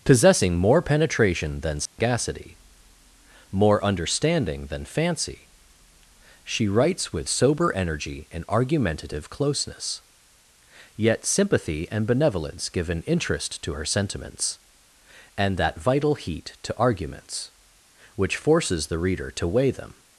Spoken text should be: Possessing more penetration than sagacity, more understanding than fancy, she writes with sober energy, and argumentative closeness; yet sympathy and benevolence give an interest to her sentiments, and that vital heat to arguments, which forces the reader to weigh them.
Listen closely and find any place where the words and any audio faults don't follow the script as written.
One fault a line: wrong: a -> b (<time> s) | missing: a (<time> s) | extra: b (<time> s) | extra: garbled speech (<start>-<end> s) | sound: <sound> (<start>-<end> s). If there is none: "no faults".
sound: dropout (1.9-2.0 s)